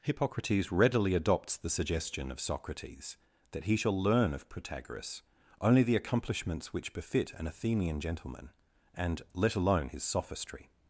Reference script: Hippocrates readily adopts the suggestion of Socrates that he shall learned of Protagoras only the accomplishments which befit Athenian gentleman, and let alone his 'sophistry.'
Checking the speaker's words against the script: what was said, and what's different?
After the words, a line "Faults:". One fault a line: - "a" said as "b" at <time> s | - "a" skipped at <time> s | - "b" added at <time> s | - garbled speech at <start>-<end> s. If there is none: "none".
Hippocrates readily adopts the suggestion of Socrates that he shall learn of Protagoras only the accomplishments which befit an Athenian gentleman, and let alone his 'sophistry.'
Faults:
- "learned" said as "learn" at 4.0 s
- "an" added at 7.3 s